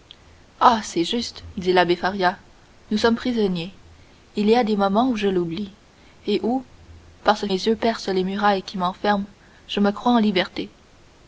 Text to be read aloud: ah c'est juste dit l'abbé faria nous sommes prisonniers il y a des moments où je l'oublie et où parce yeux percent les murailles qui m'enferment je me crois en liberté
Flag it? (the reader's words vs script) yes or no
no